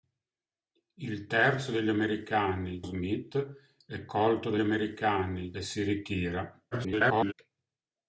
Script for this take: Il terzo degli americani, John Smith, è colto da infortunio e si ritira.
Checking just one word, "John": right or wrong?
wrong